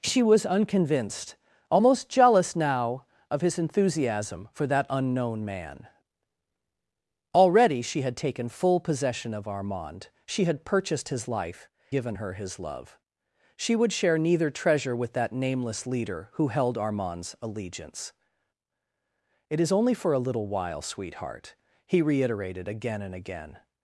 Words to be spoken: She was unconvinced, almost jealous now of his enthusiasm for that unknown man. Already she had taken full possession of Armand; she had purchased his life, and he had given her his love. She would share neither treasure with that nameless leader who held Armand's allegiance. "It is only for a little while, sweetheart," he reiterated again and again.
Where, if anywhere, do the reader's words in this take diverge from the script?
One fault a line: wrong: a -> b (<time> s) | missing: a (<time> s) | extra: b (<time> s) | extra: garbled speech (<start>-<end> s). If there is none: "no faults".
missing: and he had (11.7 s)